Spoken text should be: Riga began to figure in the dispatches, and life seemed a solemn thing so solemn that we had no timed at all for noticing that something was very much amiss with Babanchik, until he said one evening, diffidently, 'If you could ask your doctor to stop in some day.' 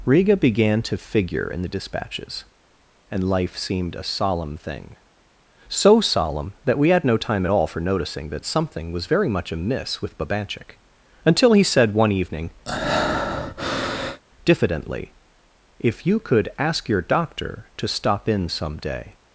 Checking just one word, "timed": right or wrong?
wrong